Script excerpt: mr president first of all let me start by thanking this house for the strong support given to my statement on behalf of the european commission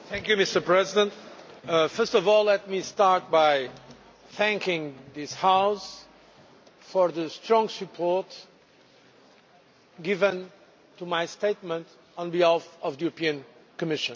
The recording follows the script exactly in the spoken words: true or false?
true